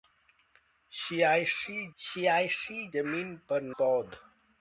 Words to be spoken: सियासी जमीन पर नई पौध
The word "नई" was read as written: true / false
false